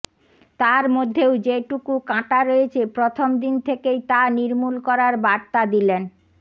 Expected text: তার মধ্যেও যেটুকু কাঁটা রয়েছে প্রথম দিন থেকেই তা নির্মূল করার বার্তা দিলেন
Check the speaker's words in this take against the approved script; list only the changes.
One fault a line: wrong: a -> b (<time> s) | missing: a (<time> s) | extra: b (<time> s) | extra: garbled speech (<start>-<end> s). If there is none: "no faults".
no faults